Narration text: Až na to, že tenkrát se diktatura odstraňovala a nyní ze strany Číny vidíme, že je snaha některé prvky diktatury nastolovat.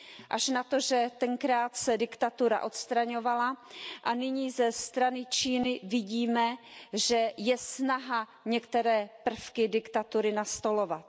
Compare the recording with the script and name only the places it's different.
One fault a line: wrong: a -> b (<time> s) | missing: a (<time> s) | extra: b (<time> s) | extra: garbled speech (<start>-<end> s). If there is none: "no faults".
no faults